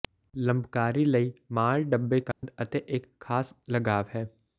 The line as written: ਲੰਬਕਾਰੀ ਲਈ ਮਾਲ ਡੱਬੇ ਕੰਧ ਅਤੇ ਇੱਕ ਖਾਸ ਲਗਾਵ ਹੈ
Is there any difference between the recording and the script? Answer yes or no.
no